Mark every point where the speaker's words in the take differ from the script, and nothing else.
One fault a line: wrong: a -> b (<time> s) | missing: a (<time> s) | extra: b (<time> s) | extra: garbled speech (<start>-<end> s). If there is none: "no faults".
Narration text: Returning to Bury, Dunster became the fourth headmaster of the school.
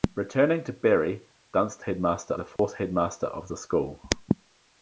wrong: became -> headmaster (1.8 s)